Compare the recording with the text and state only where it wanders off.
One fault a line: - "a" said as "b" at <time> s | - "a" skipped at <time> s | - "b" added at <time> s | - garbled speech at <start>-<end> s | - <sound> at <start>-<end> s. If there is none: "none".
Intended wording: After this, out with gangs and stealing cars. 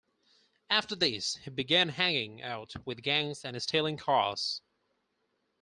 - "he began hanging" added at 1.4 s